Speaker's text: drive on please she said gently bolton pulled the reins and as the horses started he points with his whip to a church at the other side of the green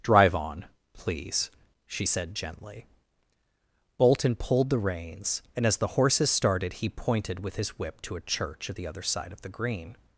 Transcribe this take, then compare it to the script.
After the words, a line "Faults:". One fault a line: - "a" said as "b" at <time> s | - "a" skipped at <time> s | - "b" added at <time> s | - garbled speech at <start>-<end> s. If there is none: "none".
drive on please she said gently bolton pulled the reins and as the horses started he pointed with his whip to a church at the other side of the green
Faults:
- "points" said as "pointed" at 6.9 s